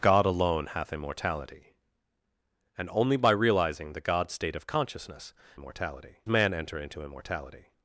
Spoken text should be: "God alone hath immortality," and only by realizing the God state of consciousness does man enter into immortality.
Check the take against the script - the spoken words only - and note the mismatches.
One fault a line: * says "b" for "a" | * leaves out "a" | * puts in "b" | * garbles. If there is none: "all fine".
* says "immortality" for "does"